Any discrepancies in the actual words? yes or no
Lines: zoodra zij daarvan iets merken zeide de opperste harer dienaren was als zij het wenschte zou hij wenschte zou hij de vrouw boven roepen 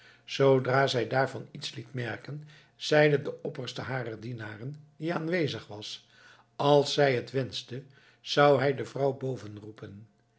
yes